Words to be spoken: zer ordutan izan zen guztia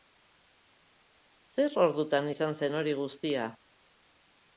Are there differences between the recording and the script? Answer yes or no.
yes